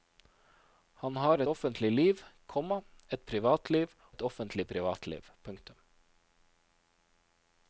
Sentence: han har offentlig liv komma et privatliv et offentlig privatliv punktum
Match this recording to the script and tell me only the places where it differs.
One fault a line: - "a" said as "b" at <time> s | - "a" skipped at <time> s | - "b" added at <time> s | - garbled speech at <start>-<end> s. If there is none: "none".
none